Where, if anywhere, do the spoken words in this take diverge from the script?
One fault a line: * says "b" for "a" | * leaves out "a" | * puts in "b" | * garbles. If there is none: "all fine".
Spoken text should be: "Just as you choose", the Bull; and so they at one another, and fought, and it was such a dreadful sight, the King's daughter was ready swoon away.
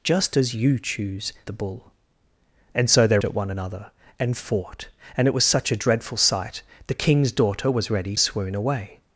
all fine